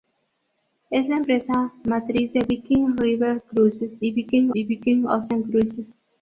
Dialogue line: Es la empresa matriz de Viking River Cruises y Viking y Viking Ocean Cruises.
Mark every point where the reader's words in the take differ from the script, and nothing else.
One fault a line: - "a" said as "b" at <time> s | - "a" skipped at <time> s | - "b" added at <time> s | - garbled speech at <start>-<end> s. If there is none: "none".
none